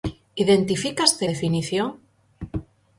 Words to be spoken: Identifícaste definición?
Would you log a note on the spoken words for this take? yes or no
no